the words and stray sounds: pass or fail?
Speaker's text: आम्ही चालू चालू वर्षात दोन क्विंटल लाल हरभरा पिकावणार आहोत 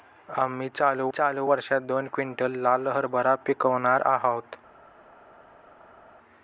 pass